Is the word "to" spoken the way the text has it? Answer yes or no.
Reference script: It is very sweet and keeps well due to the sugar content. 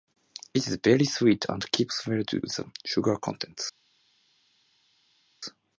no